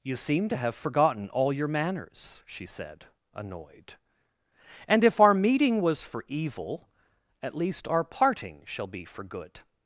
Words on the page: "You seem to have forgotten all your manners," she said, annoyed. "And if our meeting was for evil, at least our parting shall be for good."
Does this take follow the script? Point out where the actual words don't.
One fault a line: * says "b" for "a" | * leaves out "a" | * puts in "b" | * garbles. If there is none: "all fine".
all fine